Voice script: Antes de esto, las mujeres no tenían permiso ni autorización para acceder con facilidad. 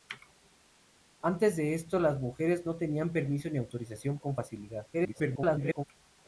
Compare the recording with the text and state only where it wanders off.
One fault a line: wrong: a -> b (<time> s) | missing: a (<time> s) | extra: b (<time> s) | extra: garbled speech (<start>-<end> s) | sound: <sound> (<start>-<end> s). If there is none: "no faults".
missing: para acceder (4.2 s)
extra: garbled speech (4.9-5.8 s)